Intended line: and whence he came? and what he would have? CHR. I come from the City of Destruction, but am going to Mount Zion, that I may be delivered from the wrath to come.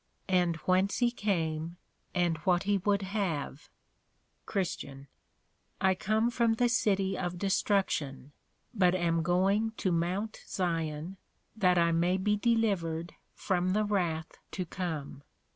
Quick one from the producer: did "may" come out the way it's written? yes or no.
yes